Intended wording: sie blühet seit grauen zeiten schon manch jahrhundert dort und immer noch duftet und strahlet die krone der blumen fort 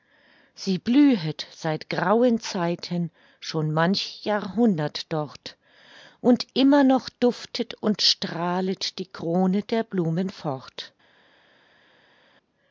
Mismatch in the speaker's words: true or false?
false